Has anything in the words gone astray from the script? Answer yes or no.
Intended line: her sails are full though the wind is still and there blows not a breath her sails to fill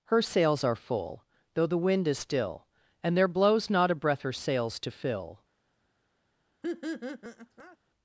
no